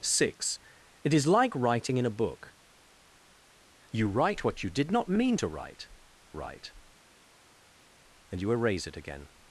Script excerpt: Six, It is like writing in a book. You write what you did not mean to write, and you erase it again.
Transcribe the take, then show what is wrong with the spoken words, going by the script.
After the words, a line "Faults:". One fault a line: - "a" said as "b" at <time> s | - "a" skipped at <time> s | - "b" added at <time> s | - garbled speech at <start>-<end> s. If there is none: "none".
Six, It is like writing in a book. You write what you did not mean to write write, and you erase it again.
Faults:
- "write" added at 6.3 s